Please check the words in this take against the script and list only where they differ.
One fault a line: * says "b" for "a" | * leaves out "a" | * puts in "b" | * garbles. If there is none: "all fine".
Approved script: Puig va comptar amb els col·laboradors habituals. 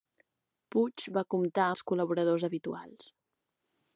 * leaves out "amb"